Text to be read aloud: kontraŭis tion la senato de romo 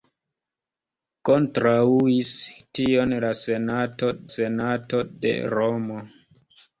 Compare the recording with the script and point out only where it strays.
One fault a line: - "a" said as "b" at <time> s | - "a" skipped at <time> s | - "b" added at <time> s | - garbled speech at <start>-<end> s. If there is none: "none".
- "senato" added at 4.3 s